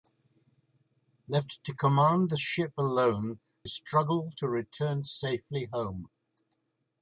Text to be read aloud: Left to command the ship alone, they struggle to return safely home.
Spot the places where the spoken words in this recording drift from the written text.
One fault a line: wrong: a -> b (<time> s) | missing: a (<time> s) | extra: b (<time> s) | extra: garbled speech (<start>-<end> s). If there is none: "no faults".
missing: they (3.4 s)